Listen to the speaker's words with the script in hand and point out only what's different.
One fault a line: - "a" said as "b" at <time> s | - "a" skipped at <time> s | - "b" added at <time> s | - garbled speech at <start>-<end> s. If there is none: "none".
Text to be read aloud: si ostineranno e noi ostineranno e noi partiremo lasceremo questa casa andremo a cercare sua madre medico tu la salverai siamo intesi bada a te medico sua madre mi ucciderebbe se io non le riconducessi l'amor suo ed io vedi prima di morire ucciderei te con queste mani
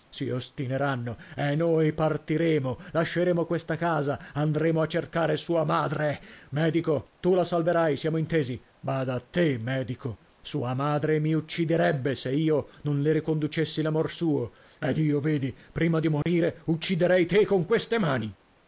- "ostineranno e noi" skipped at 1.9 s